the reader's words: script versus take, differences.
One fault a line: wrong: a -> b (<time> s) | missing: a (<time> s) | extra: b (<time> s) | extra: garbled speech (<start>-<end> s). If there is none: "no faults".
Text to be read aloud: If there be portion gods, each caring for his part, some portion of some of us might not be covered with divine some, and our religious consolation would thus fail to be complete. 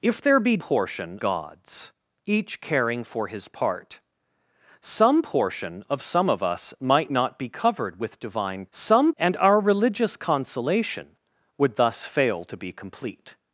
no faults